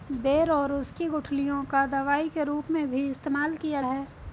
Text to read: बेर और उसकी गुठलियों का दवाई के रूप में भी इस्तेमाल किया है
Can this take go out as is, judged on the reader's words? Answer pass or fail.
pass